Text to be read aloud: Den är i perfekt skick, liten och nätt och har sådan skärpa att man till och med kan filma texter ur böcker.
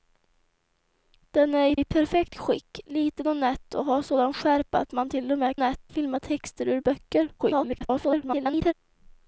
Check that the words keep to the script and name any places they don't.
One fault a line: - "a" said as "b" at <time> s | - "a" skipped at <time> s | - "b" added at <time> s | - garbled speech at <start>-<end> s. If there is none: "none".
- "i" added at 1.7 s
- "kan" said as "nätt" at 5.5 s
- garbled speech at 7.4-8.7 s